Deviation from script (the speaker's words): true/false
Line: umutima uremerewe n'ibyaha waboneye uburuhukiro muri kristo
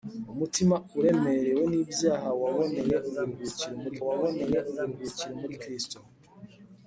true